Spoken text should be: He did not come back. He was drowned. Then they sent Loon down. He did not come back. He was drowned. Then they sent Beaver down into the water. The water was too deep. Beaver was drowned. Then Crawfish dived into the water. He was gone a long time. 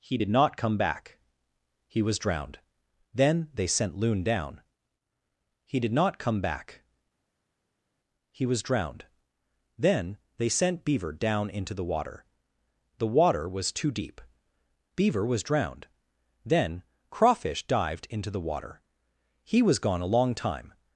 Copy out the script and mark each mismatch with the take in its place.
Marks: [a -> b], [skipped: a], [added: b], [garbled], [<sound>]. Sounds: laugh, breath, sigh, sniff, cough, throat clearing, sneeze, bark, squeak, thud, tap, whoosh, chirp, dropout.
He did not come back. He was drowned. Then they sent Loon down. He did not come back. He was drowned. Then they sent Beaver down into the water. The water was too deep. Beaver was drowned. Then Crawfish dived into the water. He was gone a long time.